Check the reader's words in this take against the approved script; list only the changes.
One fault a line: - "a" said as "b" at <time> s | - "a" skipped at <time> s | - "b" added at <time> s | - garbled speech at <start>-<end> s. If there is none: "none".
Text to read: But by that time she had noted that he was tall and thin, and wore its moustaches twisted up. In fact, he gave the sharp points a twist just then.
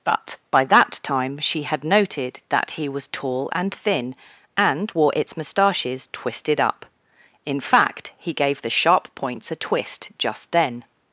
none